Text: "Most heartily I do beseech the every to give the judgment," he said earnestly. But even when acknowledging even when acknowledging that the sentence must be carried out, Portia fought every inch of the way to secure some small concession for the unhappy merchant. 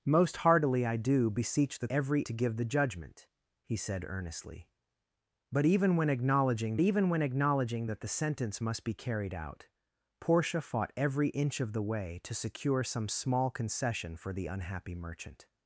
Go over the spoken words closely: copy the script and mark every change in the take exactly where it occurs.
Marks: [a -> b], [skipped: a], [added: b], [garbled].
"Most heartily I do beseech the every to give the judgment," he said earnestly. But even when acknowledging even when acknowledging that the sentence must be carried out, Portia fought every inch of the way to secure some small concession for the unhappy merchant.